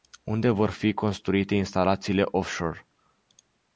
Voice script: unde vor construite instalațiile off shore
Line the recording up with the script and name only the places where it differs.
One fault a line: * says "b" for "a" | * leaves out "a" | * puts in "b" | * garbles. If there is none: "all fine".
* puts in "fi"